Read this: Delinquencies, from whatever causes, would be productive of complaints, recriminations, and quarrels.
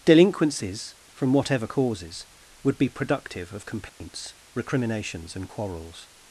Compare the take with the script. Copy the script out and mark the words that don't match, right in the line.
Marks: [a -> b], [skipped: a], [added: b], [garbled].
Delinquencies, from whatever causes, would be productive of complaints, recriminations, and quarrels.